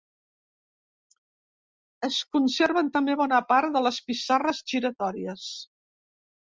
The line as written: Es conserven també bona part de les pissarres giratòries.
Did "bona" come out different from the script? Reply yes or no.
no